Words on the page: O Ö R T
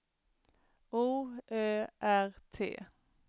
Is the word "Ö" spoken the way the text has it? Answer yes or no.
yes